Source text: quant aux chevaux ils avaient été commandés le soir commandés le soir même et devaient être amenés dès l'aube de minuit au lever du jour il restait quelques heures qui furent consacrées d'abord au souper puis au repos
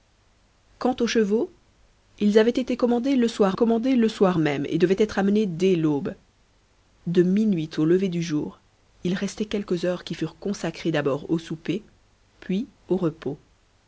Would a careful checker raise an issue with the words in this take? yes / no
no